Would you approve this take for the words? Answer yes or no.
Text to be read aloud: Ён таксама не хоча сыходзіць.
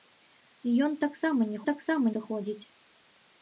no